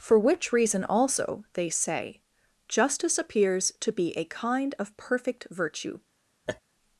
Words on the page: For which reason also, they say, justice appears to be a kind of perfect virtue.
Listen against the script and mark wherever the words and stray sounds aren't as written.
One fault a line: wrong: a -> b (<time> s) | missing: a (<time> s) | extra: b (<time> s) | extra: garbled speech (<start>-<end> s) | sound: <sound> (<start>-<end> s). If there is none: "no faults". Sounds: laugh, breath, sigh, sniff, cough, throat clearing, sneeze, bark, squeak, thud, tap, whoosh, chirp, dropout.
sound: laugh (6.5-6.6 s)